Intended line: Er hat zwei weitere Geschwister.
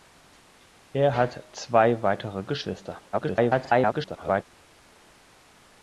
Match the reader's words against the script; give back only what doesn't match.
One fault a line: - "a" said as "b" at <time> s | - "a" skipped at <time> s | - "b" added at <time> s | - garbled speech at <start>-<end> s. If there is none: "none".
- garbled speech at 3.1-4.4 s